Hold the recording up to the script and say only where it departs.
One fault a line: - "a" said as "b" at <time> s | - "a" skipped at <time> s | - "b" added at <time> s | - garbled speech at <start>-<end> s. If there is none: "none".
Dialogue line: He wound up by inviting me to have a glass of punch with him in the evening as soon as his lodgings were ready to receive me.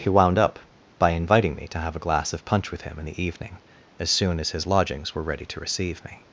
none